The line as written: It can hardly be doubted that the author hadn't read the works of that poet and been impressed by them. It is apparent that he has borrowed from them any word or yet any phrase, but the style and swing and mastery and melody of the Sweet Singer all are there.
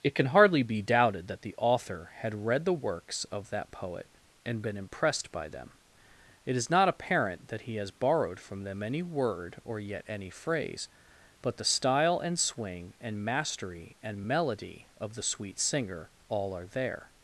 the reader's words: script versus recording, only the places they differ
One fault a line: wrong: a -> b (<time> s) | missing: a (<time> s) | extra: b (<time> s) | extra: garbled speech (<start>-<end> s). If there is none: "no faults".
wrong: hadn't -> had (2.2 s)
extra: not (6.7 s)